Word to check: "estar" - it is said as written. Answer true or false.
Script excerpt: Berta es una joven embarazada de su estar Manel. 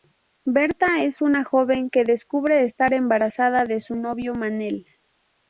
false